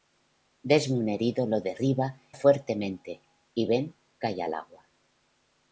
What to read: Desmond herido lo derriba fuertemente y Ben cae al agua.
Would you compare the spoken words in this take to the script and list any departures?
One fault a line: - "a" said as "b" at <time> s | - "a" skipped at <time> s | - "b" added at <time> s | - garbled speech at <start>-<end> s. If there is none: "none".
none